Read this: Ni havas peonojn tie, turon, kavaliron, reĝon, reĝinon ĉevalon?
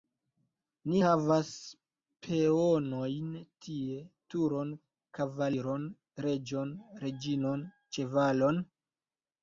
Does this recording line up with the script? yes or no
yes